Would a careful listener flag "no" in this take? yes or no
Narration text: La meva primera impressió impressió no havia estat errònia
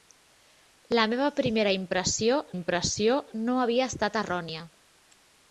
no